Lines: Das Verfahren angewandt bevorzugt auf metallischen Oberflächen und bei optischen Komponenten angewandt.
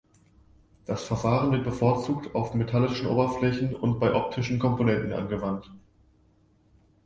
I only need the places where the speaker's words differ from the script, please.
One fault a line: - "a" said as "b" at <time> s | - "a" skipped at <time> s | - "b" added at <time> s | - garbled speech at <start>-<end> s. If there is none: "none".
- "angewandt" said as "wird" at 1.5 s